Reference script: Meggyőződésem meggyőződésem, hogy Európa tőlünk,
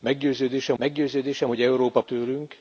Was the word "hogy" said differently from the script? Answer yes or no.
no